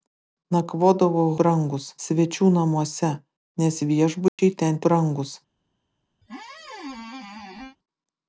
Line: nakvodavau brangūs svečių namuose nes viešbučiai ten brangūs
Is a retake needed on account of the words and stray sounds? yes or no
yes